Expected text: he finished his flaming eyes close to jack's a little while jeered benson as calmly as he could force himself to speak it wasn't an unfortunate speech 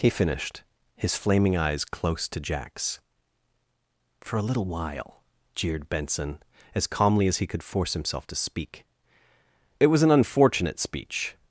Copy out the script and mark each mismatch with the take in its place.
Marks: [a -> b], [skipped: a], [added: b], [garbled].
he finished his flaming eyes close to jack's [added: for] a little while jeered benson as calmly as he could force himself to speak it [wasn't -> was] an unfortunate speech